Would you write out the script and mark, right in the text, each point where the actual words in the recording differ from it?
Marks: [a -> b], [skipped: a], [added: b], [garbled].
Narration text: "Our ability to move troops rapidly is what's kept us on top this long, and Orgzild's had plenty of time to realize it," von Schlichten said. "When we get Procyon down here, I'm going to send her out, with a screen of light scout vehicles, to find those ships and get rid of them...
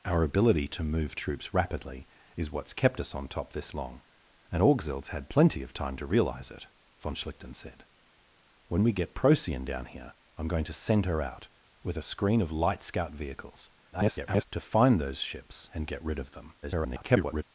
"Our ability to move troops rapidly is what's kept us on top this long, and Orgzild's had plenty of time to realize it," von Schlichten said. "When we get Procyon down here, I'm going to send her out, with a screen of light scout vehicles, [garbled] to find those ships and get rid of them... [garbled]